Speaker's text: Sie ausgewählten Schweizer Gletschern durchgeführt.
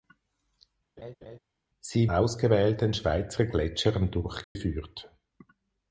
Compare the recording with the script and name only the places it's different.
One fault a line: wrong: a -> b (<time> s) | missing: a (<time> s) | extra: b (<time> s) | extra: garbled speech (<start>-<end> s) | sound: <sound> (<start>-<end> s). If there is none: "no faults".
sound: laugh (1.0-1.4 s)
sound: dropout (4.4-4.6 s)